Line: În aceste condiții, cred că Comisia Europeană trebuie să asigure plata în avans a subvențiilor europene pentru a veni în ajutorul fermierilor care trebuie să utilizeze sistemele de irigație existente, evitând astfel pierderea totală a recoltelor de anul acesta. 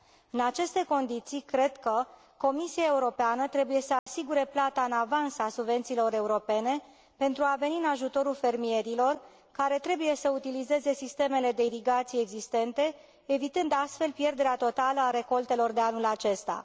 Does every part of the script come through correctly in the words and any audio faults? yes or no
no